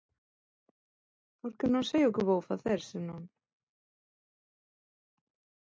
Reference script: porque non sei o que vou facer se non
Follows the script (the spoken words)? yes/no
yes